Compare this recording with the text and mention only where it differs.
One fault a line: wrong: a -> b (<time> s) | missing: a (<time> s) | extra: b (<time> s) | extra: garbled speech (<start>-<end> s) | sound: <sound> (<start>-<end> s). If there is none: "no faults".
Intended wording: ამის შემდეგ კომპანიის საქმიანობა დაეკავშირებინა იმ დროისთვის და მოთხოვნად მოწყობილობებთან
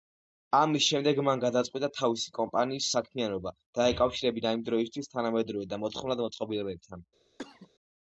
extra: მან გადაწყვიტა თავისი (1.3 s)
extra: თანამედროვე (5.2 s)
sound: cough (7.4-7.7 s)